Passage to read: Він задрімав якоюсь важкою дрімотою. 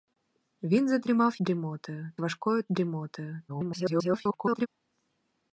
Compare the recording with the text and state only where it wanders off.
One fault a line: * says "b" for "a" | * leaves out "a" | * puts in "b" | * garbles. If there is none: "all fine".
* says "дрімотою" for "якоюсь"
* garbles